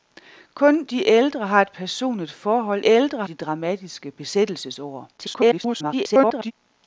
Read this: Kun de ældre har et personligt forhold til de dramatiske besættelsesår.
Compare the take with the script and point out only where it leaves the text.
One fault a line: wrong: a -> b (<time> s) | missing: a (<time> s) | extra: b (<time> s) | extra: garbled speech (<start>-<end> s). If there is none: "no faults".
wrong: til -> ældre (2.9 s)
extra: garbled speech (5.2-6.5 s)